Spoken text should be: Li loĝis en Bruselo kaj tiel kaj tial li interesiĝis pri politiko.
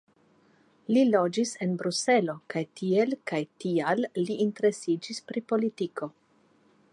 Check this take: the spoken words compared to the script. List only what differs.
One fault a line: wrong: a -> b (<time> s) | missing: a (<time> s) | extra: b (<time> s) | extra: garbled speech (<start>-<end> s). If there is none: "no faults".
no faults